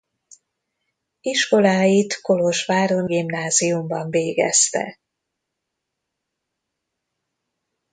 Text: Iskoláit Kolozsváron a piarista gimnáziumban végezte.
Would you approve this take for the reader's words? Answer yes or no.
no